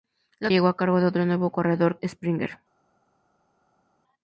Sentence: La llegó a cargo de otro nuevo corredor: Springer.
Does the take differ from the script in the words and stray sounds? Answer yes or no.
no